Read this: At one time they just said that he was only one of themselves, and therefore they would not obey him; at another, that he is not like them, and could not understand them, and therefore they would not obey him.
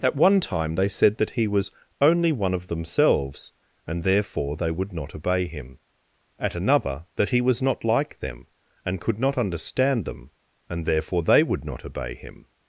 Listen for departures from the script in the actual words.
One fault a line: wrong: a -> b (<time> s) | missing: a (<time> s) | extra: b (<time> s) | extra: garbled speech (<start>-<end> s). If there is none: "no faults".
missing: just (0.9 s)
wrong: is -> was (7.4 s)